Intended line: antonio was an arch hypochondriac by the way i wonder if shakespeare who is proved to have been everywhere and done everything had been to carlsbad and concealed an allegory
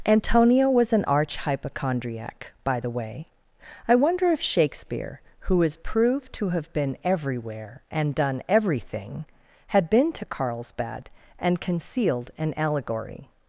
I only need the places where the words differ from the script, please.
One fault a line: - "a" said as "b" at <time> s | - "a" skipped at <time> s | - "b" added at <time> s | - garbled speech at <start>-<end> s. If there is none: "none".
none